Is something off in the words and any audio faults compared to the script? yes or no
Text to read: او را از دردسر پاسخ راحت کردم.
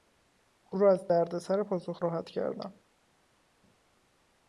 no